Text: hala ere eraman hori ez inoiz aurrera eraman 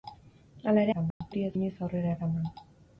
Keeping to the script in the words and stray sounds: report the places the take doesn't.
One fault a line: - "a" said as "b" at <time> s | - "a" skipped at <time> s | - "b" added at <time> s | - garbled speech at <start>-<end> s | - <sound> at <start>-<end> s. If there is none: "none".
- dropout at 1.1-1.2 s